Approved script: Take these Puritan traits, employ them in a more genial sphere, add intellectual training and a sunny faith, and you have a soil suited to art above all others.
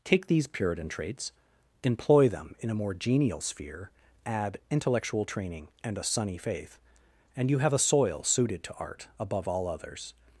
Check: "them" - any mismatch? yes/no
no